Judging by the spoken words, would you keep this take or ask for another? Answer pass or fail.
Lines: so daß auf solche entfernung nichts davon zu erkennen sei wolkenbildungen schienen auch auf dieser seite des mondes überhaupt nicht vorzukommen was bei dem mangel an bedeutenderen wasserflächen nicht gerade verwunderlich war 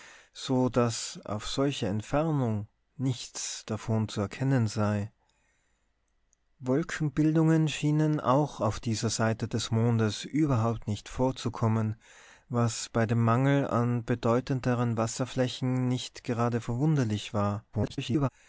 fail